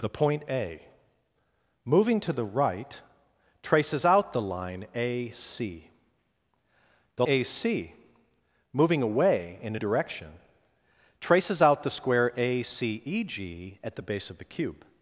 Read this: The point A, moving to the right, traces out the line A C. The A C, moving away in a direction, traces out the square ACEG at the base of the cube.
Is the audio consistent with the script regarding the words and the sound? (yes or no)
yes